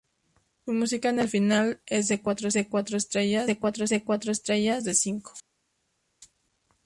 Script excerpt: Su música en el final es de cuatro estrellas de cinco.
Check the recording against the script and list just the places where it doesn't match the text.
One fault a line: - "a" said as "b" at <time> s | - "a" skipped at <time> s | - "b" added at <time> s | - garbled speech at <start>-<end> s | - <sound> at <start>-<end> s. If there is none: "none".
- "cuatro estrellas de" added at 3.6 s